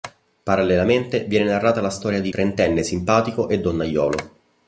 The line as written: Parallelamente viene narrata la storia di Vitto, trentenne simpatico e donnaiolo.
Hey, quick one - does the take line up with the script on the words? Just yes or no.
no